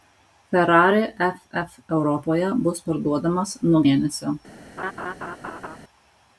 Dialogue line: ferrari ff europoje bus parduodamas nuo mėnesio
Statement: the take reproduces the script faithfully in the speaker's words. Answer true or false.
true